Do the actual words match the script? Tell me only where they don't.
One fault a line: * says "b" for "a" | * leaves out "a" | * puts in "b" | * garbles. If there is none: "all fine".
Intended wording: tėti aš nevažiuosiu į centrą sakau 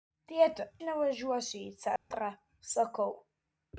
* leaves out "aš"